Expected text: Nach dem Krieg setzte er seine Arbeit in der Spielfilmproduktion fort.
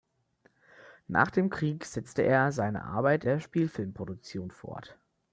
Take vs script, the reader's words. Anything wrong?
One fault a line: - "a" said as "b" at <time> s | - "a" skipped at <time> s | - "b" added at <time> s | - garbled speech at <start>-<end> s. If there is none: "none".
- "in" skipped at 3.2 s